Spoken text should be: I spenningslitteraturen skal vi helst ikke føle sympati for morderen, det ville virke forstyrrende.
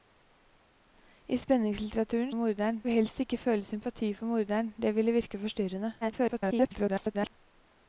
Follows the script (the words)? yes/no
no